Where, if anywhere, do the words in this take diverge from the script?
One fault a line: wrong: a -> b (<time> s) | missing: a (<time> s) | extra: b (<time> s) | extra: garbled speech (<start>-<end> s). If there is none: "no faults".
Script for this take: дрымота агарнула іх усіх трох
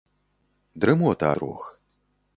missing: агарнула іх усіх (1.3 s)